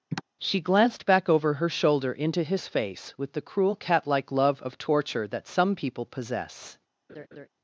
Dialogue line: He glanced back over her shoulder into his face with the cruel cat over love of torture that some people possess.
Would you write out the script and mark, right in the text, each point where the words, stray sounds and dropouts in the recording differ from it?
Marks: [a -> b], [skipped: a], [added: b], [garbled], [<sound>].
[sigh] [He -> She] glanced back over her shoulder into his face with the cruel cat [over -> like] love of torture that some people possess. [laugh]